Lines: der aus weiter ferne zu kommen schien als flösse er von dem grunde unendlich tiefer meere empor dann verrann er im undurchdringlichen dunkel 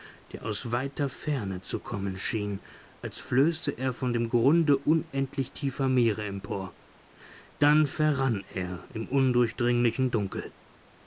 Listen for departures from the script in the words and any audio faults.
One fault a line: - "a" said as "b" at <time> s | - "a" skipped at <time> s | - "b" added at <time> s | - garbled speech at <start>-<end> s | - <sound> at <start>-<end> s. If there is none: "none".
none